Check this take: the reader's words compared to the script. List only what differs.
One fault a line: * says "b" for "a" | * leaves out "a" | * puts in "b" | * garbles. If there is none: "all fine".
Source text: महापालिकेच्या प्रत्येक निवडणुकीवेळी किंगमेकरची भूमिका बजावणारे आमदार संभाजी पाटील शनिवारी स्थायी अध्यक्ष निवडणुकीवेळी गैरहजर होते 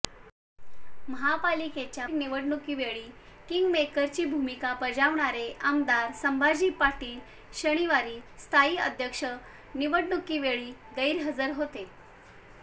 * leaves out "प्रत्येक"